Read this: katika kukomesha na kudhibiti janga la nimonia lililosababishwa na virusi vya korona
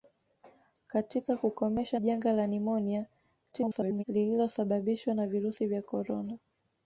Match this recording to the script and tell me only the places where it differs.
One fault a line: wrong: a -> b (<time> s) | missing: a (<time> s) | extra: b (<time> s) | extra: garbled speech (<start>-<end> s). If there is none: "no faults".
missing: na kudhibiti (2.0 s)
extra: garbled speech (3.5-4.0 s)